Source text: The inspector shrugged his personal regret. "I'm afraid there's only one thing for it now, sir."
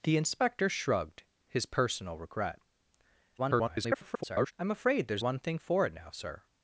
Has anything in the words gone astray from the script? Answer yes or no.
yes